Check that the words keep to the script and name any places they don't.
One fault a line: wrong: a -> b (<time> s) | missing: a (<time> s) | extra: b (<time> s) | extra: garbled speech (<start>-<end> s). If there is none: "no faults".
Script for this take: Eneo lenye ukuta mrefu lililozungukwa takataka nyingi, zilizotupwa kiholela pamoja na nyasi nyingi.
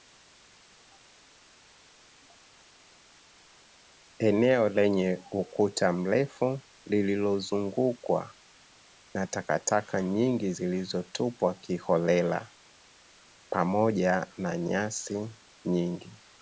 extra: na (9.1 s)